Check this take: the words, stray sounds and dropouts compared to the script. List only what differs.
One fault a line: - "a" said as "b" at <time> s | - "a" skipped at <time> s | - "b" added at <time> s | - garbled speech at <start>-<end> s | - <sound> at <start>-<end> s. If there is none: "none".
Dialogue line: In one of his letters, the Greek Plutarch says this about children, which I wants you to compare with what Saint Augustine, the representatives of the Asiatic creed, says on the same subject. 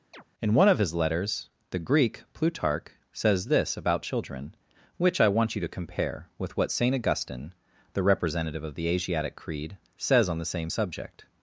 - chirp at 0.1-0.2 s
- "wants" said as "want" at 5.3 s
- "representatives" said as "representative" at 8.0 s